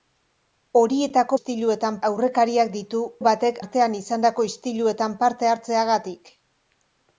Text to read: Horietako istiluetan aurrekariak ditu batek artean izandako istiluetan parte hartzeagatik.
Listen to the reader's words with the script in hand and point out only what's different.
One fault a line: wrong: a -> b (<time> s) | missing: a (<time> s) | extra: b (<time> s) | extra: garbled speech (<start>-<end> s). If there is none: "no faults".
no faults